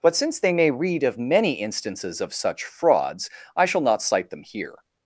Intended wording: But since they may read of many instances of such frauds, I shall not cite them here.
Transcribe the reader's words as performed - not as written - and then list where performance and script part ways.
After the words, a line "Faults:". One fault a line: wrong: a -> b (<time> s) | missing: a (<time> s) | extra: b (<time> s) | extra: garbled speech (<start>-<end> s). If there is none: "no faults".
But since they may read of many instances of such frauds, I shall not cite them here.
Faults:
no faults